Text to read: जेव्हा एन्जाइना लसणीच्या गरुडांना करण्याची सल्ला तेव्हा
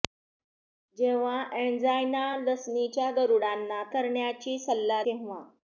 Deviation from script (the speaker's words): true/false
false